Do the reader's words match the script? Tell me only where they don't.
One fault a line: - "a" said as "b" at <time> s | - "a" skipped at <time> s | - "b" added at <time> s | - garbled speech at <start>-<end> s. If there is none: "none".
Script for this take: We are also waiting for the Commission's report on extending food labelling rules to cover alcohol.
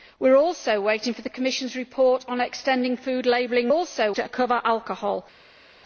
- "rules" said as "also" at 3.7 s